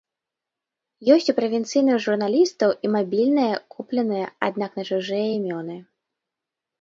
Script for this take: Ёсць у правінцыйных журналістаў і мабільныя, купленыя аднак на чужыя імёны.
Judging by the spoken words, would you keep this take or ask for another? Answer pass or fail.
pass